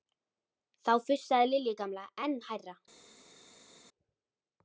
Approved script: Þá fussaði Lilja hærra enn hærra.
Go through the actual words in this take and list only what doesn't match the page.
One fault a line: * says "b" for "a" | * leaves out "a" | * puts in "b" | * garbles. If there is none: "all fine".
* says "gamla" for "hærra"